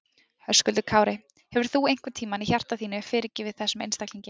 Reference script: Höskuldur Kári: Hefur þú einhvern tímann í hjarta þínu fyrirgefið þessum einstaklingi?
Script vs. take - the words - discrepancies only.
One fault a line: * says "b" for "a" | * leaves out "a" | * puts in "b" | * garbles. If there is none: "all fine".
all fine